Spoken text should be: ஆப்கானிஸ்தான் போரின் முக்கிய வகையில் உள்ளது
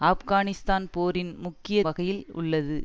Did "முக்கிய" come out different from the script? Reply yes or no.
no